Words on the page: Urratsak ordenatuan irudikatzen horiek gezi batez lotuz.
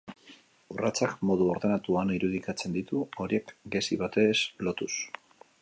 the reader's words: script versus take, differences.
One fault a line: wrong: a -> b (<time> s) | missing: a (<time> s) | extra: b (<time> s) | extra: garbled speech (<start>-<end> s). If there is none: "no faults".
extra: modu (1.3 s)
extra: ditu (2.8 s)